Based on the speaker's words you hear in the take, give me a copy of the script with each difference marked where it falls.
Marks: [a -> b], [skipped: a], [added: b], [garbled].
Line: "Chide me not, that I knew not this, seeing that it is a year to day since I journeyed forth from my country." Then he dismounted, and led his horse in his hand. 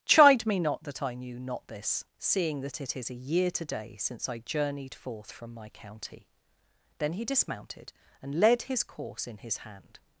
"Chide me not, that I knew not this, seeing that it is a year to day since I journeyed forth from my [country." -> county] Then he dismounted, and led his [horse -> course] in his hand.